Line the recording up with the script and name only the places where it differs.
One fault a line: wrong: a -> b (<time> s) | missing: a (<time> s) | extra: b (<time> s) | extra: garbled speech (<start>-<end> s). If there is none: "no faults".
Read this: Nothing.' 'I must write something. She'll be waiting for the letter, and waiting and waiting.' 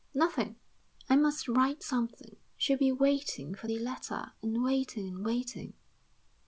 no faults